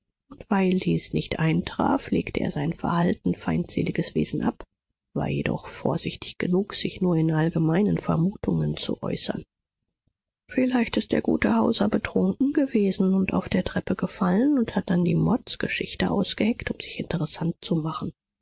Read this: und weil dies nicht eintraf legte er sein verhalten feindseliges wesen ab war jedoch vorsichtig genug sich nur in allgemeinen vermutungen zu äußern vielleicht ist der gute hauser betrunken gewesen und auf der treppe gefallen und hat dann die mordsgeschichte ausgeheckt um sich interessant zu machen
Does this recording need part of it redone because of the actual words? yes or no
no